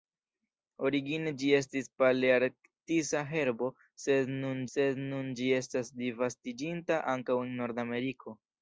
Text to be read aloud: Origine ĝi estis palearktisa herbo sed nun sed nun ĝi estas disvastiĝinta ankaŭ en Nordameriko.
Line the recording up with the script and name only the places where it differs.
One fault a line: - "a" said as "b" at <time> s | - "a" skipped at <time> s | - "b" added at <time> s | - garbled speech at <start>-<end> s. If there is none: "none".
none